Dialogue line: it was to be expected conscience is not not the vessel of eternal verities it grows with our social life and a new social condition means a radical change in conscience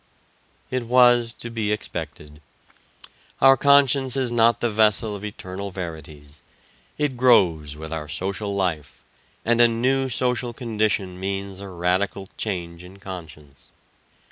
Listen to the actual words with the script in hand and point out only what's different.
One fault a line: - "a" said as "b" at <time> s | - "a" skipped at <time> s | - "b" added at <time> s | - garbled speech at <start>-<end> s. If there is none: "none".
- "our" added at 3.4 s
- "not" skipped at 4.6 s